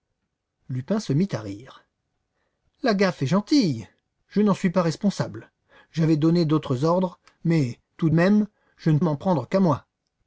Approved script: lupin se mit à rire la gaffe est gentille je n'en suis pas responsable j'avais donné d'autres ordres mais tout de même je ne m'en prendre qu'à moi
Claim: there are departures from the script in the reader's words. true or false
false